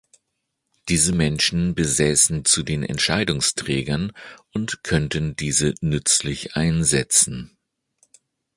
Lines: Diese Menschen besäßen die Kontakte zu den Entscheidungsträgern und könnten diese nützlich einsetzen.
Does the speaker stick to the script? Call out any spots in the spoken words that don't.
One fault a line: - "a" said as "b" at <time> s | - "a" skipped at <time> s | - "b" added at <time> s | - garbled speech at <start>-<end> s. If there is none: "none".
- "die Kontakte" skipped at 2.4 s